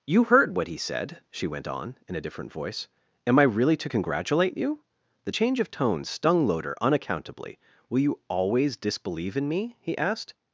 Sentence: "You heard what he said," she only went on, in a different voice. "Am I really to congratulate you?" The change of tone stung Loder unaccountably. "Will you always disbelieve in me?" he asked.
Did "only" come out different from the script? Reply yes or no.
yes